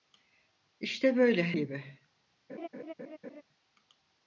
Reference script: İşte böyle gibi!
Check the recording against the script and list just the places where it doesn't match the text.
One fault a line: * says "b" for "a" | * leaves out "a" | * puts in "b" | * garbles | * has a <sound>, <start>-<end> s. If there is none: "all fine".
* has a laugh, 2.5-3.4 s